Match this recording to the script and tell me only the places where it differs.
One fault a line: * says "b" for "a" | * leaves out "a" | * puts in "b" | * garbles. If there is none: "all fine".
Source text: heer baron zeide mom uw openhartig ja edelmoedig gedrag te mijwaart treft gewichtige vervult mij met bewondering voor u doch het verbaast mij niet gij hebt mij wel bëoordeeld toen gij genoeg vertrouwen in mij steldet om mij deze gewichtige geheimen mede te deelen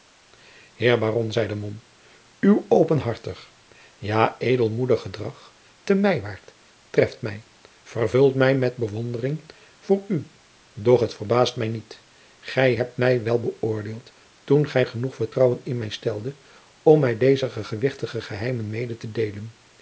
* says "mij" for "gewichtige"